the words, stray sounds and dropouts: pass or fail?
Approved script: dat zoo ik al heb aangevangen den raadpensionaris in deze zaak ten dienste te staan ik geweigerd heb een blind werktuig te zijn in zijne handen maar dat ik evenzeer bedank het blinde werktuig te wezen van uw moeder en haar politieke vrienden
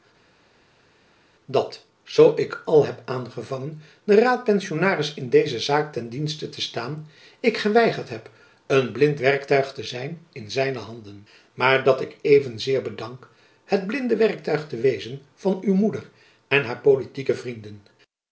pass